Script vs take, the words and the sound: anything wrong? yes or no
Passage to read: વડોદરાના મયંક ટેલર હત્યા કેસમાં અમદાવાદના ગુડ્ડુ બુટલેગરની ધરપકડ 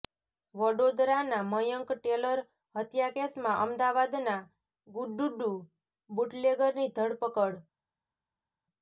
no